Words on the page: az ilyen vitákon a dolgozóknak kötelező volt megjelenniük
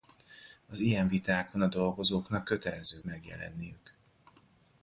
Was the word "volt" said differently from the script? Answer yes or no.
yes